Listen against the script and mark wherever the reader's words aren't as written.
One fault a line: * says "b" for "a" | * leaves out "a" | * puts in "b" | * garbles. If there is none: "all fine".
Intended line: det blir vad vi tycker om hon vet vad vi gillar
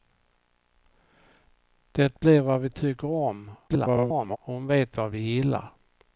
* garbles